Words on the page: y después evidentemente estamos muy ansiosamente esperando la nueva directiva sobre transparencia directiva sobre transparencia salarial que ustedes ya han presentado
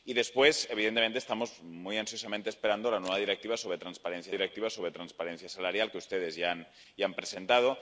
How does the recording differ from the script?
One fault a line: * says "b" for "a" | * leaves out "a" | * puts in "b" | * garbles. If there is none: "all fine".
all fine